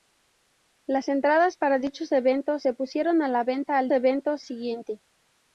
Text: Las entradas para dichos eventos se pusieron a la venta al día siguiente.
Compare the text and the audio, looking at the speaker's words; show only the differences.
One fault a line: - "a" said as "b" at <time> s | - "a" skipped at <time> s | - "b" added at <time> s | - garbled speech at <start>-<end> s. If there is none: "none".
- "día" said as "eventos" at 3.9 s